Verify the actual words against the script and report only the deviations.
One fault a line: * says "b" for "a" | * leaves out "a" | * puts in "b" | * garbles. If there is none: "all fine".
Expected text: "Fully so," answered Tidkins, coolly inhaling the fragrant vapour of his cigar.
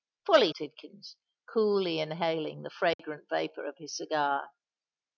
* leaves out "so answered"